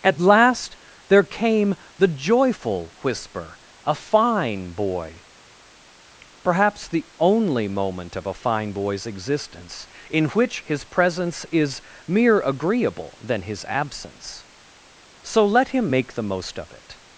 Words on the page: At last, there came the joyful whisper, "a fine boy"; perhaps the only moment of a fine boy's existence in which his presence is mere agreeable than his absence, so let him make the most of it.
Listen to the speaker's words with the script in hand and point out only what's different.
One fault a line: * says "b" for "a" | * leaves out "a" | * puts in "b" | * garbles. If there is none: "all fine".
all fine